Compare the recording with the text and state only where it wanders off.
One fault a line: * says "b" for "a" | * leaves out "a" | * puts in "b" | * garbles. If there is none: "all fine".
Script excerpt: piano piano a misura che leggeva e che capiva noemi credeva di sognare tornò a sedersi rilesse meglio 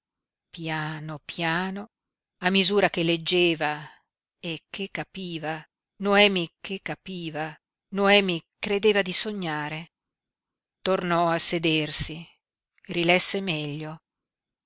* puts in "che capiva noemi"